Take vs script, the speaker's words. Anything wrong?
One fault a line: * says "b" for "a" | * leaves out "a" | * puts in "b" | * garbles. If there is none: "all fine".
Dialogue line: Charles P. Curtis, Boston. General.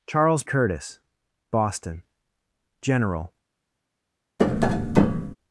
* leaves out "P"